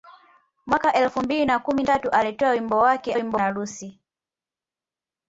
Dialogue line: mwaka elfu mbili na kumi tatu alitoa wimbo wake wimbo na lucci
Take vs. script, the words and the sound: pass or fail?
pass